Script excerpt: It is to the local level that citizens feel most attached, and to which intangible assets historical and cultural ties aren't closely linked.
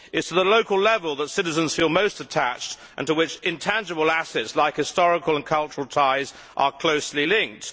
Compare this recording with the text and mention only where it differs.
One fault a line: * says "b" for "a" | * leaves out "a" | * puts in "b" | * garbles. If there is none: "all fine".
* puts in "like"
* says "are" for "aren't"